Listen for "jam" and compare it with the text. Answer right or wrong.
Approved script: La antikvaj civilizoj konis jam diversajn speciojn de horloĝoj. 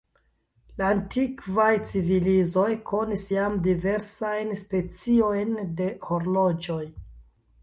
right